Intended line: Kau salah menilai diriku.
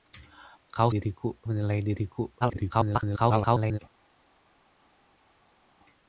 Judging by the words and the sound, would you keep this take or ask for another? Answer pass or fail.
fail